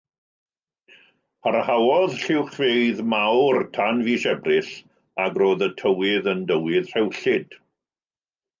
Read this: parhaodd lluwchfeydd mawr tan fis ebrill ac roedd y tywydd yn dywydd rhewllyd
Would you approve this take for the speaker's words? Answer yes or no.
yes